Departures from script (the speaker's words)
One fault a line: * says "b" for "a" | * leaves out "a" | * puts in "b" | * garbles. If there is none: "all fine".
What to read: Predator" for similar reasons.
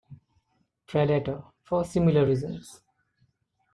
all fine